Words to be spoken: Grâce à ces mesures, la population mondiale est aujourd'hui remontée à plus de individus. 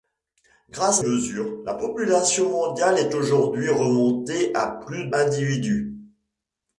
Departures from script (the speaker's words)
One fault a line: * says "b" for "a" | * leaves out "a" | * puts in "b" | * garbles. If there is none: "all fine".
* leaves out "ces"
* leaves out "de"